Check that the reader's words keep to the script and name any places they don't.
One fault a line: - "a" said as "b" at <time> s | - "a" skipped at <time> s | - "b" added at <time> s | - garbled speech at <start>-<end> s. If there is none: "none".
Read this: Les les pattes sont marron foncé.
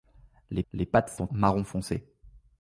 none